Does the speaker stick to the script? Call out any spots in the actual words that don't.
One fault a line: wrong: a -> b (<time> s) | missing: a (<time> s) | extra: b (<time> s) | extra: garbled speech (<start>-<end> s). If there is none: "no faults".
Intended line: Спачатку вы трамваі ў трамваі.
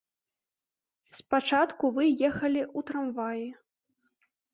wrong: трамваі -> ехалі (2.3 s)